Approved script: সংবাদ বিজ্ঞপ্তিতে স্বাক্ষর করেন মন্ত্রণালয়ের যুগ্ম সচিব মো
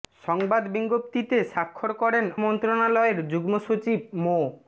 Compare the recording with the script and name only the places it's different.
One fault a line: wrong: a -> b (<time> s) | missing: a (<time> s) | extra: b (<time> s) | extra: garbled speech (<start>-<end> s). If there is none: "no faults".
no faults